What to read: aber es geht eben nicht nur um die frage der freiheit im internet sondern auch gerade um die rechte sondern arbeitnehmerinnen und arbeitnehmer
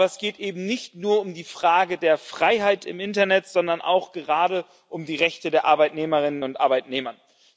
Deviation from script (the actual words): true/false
true